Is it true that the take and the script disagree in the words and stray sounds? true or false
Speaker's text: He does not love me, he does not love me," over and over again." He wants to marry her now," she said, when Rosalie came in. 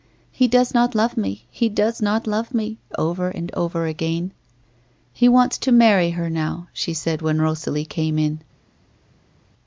false